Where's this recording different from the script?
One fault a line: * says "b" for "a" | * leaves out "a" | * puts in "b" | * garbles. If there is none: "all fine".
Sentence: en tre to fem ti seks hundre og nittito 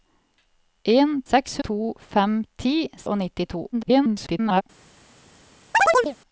* says "seks" for "tre"
* leaves out "seks hundre"
* garbles